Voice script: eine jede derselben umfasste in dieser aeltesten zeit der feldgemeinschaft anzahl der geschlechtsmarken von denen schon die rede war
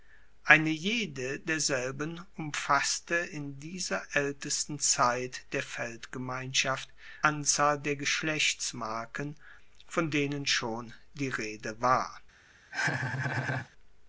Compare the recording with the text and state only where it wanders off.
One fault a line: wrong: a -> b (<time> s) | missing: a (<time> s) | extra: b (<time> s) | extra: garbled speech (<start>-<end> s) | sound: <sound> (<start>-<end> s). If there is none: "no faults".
sound: laugh (12.7-13.7 s)